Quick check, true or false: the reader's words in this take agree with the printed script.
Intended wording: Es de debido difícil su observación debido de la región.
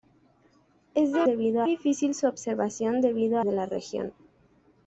true